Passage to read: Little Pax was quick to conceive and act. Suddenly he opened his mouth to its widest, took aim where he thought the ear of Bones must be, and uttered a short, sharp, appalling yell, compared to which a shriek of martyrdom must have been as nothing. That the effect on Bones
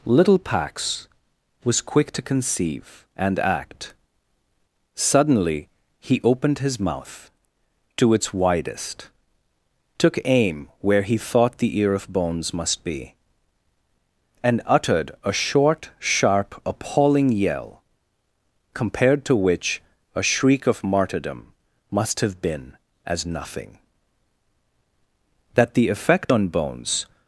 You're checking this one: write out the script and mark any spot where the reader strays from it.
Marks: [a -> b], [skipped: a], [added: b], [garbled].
Little Pax was quick to conceive and act. Suddenly he opened his mouth to its widest, took aim where he thought the ear of Bones must be, and uttered a short, sharp, appalling yell, compared to which a shriek of martyrdom must have been as nothing. That the effect on Bones